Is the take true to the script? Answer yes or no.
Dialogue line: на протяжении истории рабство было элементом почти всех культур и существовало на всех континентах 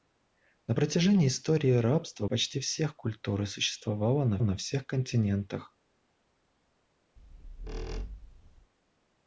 no